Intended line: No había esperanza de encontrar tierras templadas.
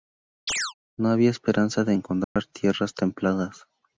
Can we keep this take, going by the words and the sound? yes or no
no